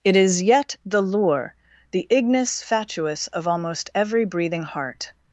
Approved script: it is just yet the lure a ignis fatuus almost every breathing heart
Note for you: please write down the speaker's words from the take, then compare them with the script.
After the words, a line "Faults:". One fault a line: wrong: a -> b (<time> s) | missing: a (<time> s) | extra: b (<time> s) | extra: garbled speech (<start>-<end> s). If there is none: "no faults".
it is yet the lure the ignis fatuus of almost every breathing heart
Faults:
missing: just (0.4 s)
wrong: a -> the (1.9 s)
extra: of (3.3 s)